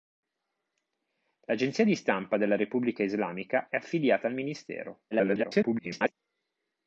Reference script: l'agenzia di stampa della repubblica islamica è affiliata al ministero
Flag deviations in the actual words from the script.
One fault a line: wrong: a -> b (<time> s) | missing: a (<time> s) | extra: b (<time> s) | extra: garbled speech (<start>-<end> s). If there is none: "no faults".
extra: garbled speech (5.1-6.1 s)